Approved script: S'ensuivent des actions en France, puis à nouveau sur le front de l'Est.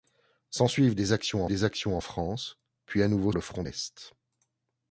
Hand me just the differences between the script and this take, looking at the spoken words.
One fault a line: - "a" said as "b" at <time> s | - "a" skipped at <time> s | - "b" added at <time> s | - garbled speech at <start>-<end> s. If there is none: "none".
- "des actions" added at 1.5 s
- "sur" skipped at 3.3 s
- "de" skipped at 3.6 s